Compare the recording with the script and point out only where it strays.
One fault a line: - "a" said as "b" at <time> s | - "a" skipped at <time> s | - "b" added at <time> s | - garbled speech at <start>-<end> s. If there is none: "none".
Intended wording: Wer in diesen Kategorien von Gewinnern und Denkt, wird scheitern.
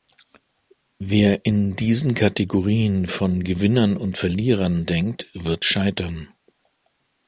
- "Verlierern" added at 4.2 s